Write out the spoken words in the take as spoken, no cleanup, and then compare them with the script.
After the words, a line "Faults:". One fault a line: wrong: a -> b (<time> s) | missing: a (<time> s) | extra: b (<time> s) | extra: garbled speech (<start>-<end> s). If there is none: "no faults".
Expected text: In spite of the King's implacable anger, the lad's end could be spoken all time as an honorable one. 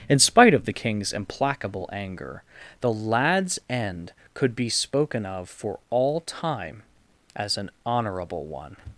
In spite of the King's implacable anger, the lad's end could be spoken of for all time as an honorable one.
Faults:
extra: of for (5.2 s)